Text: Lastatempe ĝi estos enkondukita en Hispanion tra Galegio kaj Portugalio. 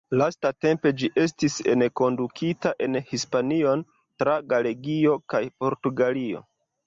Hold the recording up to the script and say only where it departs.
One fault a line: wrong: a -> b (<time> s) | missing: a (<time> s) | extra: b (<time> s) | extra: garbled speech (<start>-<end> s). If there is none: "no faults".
wrong: estos -> estis (1.2 s)